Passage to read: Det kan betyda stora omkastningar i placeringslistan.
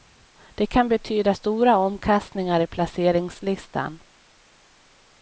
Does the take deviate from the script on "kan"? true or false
false